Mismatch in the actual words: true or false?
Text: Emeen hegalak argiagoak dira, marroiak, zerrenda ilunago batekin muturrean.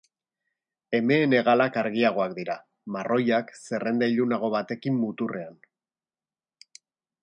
false